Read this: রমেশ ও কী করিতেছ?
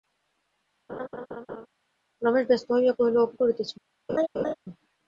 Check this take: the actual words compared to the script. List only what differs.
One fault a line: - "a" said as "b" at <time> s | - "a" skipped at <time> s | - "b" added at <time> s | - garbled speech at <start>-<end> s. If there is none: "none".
- "ব্যস্ত হইয়া কহিল" added at 2.5 s